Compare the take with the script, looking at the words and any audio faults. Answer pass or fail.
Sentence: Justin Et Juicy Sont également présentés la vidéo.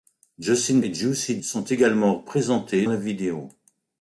pass